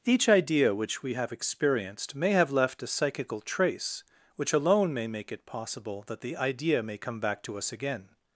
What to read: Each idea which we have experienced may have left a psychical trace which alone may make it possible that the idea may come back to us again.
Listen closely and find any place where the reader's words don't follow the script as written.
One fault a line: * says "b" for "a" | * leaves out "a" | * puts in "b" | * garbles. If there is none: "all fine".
all fine